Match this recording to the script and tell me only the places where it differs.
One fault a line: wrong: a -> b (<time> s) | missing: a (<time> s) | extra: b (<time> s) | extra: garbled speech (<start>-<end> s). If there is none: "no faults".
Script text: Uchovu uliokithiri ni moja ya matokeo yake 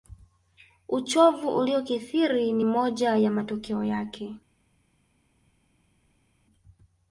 no faults